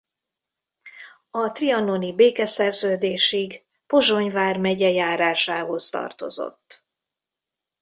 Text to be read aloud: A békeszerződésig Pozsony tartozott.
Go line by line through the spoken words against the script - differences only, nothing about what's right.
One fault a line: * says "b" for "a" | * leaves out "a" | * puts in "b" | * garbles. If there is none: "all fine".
* puts in "trianoni"
* puts in "vármegye járásához"